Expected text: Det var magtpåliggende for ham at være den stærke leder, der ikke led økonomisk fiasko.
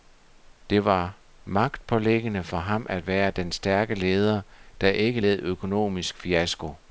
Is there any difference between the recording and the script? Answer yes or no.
no